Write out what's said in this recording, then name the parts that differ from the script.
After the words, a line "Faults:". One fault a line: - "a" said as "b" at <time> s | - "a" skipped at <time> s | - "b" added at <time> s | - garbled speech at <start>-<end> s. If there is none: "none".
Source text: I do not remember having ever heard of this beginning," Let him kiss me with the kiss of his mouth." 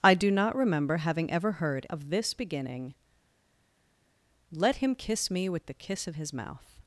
I do not remember having ever heard of this beginning," Let him kiss me with the kiss of his mouth."
Faults:
none